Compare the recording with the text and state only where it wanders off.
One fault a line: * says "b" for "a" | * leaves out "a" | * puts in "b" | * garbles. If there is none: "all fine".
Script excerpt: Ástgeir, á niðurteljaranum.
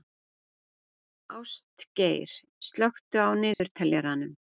* puts in "slökktu"